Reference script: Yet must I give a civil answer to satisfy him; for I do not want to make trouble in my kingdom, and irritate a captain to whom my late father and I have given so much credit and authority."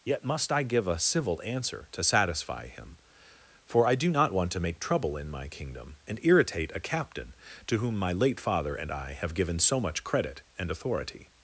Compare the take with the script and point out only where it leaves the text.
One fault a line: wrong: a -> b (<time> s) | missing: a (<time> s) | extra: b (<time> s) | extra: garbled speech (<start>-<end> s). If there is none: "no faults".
no faults